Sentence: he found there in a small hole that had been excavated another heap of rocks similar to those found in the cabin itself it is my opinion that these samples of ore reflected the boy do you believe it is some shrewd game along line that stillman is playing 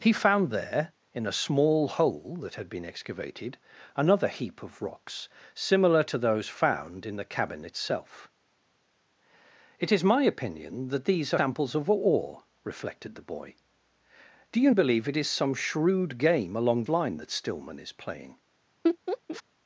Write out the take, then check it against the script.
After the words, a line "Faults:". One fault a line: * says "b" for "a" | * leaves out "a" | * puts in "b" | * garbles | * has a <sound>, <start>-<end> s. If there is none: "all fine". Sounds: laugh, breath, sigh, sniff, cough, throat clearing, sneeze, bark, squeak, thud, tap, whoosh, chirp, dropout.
he found there in a small hole that had been excavated another heap of rocks similar to those found in the cabin itself it is my opinion that these samples of ore reflected the boy do you believe it is some shrewd game along line that stillman is playing
Faults:
* has a laugh, 18.8-19.4 s